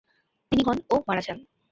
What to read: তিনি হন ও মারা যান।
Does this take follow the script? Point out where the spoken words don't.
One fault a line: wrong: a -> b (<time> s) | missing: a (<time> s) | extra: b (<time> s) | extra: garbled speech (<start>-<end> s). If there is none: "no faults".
no faults